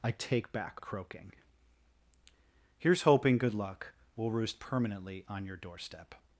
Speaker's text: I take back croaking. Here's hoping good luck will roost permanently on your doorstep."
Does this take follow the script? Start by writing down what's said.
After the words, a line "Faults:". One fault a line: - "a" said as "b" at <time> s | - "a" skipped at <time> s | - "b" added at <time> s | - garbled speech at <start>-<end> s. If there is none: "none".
I take back croaking. Here's hoping good luck will roost permanently on your doorstep."
Faults:
none